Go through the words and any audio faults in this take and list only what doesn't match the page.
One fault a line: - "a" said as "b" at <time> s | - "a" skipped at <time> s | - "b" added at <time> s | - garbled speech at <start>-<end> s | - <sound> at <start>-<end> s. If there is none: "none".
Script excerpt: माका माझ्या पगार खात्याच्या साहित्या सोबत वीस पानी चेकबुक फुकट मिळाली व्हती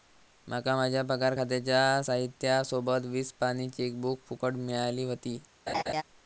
- laugh at 5.7-6.0 s